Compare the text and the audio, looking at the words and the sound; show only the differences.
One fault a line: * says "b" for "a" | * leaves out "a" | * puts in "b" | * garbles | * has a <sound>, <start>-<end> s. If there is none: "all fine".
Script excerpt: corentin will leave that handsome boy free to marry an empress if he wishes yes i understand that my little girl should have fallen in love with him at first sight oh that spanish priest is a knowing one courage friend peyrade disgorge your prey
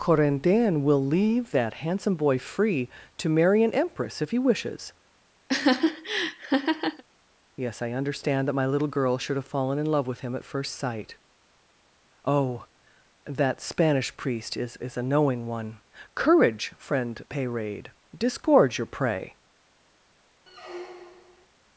* has a laugh, 5.5-7.0 s
* puts in "is"
* has a squeak, 20.5-21.5 s